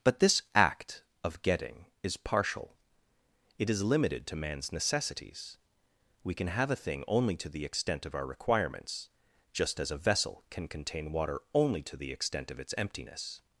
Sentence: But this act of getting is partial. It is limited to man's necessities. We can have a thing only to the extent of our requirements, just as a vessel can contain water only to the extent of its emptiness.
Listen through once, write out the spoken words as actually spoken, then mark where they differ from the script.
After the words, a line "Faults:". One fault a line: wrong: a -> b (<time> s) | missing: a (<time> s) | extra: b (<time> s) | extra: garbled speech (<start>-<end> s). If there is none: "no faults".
But this act of getting is partial. It is limited to man's necessities. We can have a thing only to the extent of our requirements, just as a vessel can contain water only to the extent of its emptiness.
Faults:
no faults